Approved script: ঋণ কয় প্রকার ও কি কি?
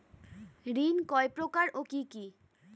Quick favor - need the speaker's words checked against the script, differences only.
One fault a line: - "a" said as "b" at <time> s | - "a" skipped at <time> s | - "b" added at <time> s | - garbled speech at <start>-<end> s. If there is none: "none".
none